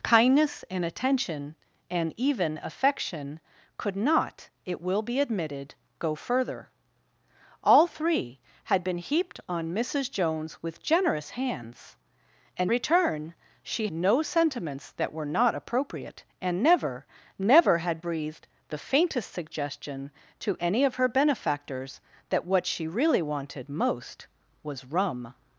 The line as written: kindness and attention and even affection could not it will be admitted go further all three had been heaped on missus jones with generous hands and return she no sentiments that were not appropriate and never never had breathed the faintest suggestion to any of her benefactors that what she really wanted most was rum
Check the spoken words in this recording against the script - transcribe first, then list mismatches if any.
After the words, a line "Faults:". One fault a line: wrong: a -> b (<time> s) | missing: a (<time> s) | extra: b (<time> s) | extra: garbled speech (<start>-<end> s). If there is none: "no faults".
kindness and attention and even affection could not it will be admitted go further all three had been heaped on missus jones with generous hands and return she no sentiments that were not appropriate and never never had breathed the faintest suggestion to any of her benefactors that what she really wanted most was rum
Faults:
no faults